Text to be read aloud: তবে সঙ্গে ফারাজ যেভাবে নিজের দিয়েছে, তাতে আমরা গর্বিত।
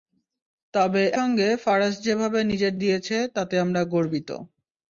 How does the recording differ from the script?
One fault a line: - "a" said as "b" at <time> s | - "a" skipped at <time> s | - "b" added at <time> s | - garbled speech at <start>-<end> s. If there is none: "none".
none